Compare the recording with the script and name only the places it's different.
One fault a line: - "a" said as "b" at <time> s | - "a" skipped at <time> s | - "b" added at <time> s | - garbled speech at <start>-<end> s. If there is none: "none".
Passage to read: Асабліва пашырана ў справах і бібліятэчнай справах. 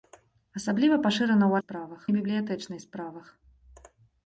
none